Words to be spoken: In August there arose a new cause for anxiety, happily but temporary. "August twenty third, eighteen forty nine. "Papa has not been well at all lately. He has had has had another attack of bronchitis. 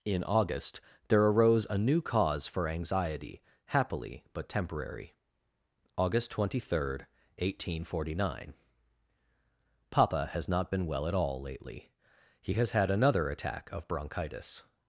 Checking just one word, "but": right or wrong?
right